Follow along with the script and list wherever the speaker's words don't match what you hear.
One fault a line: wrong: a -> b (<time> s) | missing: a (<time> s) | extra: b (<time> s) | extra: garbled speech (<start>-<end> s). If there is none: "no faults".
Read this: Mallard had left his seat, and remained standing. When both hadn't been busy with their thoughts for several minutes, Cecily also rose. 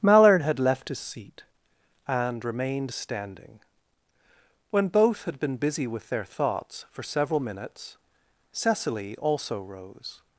wrong: hadn't -> had (5.3 s)